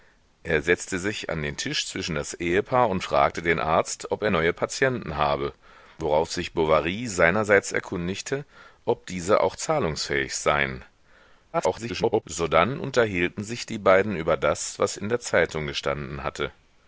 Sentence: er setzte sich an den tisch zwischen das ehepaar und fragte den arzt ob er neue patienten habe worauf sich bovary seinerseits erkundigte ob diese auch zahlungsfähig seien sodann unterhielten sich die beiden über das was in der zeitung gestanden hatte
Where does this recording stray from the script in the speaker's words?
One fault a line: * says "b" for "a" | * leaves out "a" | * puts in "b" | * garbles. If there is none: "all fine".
* garbles